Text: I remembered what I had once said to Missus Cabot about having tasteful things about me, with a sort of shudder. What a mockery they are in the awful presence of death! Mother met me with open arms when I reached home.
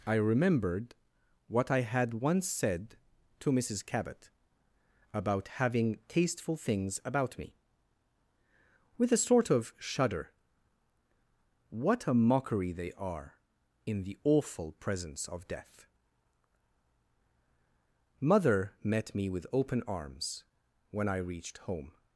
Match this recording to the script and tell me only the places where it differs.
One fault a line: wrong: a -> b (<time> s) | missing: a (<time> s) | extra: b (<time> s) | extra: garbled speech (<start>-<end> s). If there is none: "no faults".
no faults